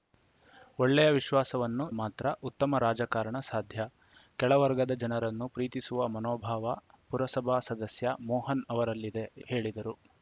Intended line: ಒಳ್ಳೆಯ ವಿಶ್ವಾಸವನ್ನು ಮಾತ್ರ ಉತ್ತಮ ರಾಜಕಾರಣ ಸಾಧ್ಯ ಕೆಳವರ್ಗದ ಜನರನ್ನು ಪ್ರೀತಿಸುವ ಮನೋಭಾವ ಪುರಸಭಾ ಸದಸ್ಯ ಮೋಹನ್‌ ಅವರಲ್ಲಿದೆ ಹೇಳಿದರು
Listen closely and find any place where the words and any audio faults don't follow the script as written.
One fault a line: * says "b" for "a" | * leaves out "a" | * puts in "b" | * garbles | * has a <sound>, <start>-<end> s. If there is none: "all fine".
all fine